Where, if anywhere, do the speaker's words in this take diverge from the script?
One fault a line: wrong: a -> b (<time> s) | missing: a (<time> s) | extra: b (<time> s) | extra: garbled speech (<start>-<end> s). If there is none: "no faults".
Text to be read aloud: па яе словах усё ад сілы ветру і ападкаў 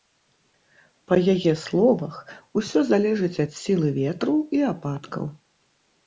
extra: залежыць (2.9 s)